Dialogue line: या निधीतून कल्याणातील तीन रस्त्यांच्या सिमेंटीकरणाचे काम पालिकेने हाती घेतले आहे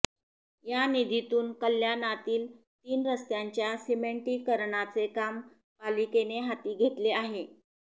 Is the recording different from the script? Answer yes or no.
no